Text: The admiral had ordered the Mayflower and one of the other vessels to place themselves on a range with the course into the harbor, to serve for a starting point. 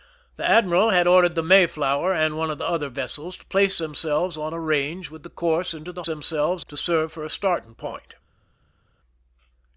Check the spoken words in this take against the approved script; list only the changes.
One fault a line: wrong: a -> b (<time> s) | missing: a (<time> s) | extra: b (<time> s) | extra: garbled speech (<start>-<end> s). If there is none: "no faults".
wrong: harbor -> themselves (6.0 s)